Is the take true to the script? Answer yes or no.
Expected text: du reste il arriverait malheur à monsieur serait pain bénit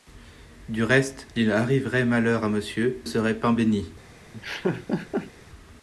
yes